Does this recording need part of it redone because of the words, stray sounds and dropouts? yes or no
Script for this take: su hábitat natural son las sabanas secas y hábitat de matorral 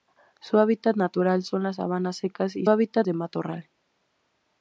no